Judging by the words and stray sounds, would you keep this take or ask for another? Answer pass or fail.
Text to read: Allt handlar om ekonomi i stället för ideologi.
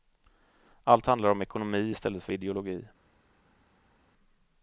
pass